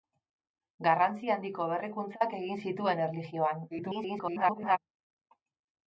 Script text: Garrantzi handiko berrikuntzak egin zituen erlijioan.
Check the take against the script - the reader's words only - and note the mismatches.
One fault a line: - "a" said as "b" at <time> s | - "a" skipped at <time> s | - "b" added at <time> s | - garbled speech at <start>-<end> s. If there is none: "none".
- garbled speech at 3.7-4.8 s